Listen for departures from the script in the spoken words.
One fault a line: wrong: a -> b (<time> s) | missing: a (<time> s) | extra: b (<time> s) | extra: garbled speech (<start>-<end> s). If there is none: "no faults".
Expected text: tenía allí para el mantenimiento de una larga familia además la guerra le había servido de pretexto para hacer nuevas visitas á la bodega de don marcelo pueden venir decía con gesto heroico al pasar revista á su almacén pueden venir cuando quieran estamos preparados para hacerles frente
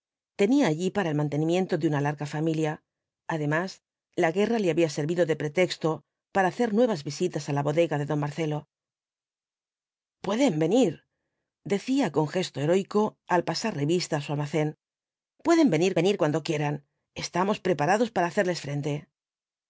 extra: venir (16.0 s)